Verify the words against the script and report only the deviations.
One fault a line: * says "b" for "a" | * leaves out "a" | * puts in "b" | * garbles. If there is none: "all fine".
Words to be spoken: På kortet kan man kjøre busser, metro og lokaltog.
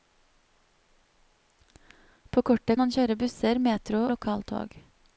* leaves out "kan"
* leaves out "og"